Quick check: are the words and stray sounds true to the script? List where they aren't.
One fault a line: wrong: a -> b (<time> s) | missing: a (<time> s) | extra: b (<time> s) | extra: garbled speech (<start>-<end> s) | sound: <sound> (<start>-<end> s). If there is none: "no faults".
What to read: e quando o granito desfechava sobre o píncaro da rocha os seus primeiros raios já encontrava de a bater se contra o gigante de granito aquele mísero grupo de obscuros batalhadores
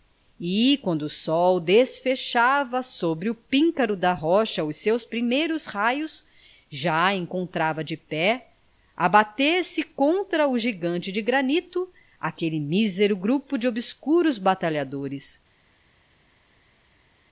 wrong: granito -> sol (1.1 s)
extra: pé (8.0 s)